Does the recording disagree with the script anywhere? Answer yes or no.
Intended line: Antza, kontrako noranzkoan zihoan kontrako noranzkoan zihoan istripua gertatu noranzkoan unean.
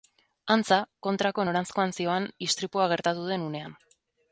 yes